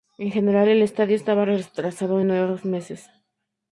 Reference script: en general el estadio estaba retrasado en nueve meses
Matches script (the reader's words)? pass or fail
pass